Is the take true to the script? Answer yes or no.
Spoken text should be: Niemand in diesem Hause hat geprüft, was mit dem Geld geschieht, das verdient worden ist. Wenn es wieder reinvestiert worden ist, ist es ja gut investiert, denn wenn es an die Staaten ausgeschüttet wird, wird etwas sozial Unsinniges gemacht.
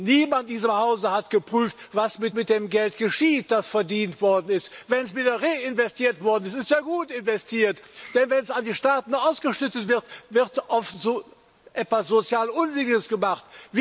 no